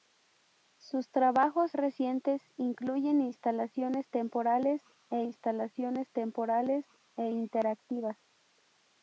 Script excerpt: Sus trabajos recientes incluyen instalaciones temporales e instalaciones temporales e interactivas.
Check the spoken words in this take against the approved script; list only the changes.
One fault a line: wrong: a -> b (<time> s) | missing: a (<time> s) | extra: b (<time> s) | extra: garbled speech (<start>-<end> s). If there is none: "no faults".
no faults